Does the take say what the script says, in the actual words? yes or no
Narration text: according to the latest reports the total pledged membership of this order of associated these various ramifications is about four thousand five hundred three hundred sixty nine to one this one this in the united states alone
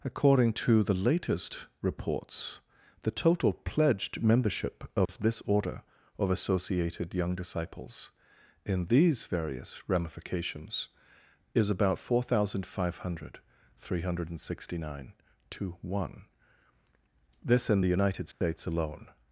no